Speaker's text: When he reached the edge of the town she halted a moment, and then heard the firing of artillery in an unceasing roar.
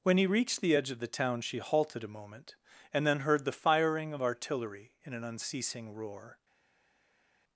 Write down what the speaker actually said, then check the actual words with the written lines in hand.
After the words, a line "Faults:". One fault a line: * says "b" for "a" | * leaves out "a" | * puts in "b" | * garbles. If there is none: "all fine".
When he reached the edge of the town she halted a moment, and then heard the firing of artillery in an unceasing roar.
Faults:
all fine